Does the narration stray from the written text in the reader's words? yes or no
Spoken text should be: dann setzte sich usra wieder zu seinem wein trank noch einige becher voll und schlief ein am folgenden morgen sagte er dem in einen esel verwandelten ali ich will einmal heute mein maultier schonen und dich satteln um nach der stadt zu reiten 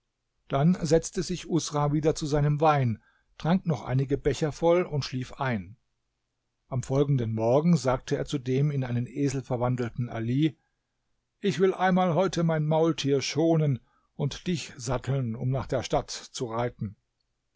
yes